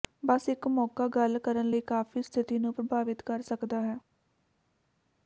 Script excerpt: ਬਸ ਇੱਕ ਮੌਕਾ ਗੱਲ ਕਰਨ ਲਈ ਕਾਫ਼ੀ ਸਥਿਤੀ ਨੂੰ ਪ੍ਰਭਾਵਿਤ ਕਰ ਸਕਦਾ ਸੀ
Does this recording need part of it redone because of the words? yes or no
yes